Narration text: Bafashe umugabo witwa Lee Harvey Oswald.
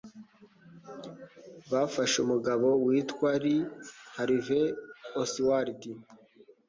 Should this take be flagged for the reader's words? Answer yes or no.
no